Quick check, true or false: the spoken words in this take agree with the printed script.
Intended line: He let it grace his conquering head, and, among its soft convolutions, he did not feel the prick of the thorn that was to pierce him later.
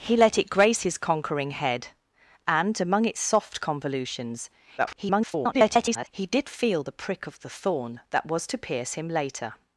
false